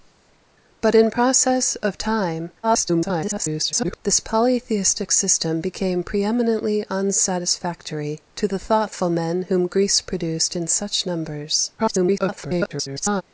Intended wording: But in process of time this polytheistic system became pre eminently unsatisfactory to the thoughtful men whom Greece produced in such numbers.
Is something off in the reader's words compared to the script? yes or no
yes